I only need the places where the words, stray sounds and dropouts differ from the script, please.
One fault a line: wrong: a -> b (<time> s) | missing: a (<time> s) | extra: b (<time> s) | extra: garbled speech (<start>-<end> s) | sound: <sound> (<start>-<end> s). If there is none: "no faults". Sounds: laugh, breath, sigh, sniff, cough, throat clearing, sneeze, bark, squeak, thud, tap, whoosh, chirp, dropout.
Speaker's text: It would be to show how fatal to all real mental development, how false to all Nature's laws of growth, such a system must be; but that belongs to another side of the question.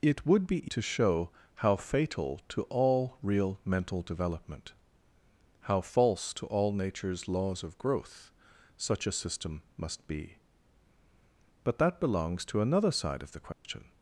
sound: dropout (13.5-13.6 s)